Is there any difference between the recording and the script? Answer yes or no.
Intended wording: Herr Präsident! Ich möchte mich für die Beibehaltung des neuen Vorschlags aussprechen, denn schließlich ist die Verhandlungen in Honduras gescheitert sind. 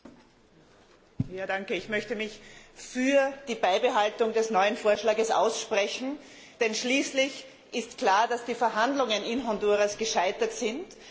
yes